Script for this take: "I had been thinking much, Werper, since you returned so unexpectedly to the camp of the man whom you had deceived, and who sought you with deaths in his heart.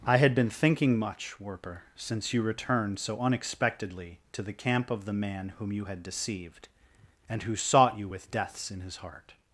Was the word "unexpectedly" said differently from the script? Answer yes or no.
no